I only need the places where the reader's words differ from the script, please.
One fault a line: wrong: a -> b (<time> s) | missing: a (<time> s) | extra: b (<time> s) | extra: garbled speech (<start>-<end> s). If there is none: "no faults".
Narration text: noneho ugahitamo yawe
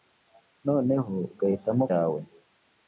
no faults